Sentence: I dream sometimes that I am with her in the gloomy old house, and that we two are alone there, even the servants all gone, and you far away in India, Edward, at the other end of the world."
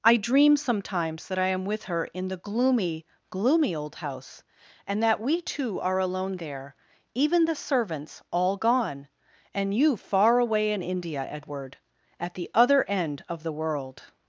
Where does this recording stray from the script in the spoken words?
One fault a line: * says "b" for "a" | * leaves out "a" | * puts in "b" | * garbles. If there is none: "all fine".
* puts in "gloomy"